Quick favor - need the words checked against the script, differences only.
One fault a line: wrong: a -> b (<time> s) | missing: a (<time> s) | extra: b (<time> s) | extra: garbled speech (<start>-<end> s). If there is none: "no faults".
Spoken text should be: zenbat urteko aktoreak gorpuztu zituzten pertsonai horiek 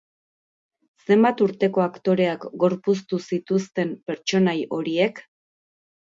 no faults